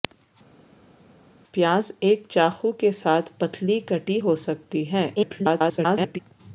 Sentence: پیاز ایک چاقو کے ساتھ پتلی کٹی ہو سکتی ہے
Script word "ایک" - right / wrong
right